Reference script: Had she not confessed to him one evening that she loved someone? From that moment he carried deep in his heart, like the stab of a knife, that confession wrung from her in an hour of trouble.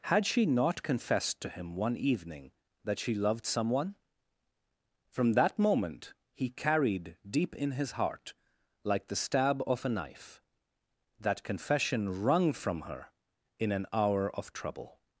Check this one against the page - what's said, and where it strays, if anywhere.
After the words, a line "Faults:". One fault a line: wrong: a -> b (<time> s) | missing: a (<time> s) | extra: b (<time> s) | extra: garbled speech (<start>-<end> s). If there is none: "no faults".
Had she not confessed to him one evening that she loved someone? From that moment he carried deep in his heart, like the stab of a knife, that confession wrung from her in an hour of trouble.
Faults:
no faults